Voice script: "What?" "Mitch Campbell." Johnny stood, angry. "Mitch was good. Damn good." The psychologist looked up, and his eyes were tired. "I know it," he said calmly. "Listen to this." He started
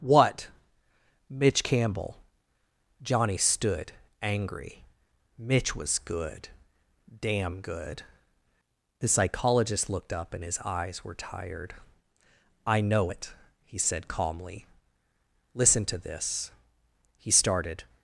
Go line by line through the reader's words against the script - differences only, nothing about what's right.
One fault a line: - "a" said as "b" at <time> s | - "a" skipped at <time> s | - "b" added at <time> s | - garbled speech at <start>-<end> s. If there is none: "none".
none